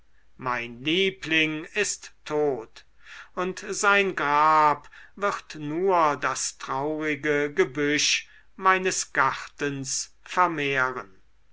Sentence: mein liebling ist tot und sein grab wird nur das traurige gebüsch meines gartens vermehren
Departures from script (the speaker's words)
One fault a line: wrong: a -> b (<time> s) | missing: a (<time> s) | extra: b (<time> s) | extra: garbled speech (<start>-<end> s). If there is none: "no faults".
no faults